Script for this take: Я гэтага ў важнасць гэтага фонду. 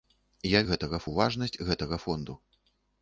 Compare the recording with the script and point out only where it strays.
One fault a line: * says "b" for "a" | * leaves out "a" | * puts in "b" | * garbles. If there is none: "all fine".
all fine